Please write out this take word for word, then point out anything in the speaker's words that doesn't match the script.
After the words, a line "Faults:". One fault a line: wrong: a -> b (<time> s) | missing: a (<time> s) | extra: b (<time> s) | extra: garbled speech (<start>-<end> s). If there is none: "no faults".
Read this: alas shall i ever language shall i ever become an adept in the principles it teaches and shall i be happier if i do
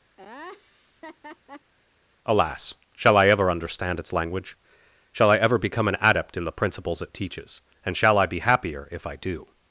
alas shall i ever understand its language shall i ever become an adept in the principles it teaches and shall i be happier if i do
Faults:
extra: understand its (3.5 s)